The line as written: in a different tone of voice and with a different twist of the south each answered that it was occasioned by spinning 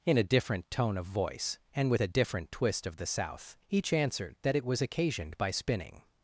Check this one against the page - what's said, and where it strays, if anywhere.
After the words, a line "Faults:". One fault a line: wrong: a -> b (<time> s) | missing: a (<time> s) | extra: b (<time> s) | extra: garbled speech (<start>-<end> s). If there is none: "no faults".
in a different tone of voice and with a different twist of the south each answered that it was occasioned by spinning
Faults:
no faults